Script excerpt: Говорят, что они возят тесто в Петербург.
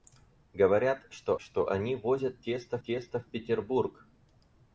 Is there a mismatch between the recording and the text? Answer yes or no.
yes